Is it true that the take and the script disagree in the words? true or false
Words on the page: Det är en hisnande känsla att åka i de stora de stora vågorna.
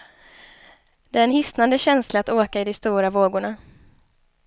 true